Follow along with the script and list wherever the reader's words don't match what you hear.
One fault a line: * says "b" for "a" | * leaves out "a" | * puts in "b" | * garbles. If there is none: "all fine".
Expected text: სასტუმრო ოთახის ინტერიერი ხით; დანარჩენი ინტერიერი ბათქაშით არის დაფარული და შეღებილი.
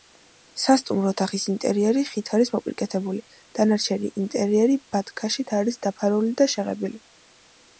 * puts in "არის მოპირკეთებული"